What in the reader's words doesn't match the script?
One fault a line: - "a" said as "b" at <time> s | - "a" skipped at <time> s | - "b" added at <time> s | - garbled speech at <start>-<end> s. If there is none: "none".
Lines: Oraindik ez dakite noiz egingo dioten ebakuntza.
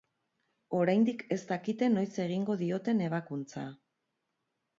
none